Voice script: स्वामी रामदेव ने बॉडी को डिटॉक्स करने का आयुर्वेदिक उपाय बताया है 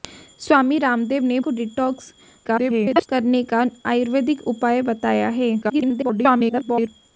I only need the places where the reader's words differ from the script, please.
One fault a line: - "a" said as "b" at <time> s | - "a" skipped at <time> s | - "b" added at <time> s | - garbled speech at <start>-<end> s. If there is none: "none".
- "बॉडी" skipped at 1.4 s
- garbled speech at 2.4-3.1 s
- garbled speech at 5.6-6.9 s